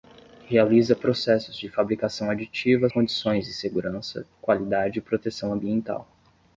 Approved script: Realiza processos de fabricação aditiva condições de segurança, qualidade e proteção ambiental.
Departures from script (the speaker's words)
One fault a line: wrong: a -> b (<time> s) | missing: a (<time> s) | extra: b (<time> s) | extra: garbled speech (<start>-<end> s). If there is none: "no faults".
no faults